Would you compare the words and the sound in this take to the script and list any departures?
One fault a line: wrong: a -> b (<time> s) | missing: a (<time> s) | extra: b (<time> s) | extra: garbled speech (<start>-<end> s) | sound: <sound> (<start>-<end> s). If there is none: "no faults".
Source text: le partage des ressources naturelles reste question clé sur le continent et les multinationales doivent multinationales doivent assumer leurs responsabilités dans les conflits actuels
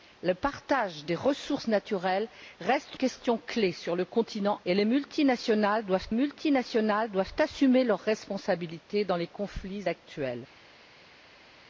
no faults